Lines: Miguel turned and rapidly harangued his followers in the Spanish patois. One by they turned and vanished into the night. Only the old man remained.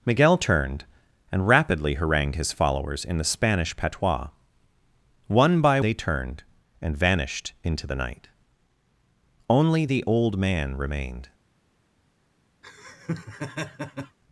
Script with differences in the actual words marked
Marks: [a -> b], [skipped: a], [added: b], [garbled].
Miguel turned and rapidly harangued his followers in the Spanish patois. One by they turned and vanished into the night. Only the old man remained.